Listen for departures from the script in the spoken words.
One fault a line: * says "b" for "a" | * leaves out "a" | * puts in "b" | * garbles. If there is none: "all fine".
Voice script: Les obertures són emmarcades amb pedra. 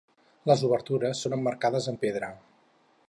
all fine